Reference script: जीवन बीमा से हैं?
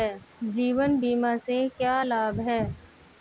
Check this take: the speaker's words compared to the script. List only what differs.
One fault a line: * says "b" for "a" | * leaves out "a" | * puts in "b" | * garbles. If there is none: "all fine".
* puts in "क्या लाभ"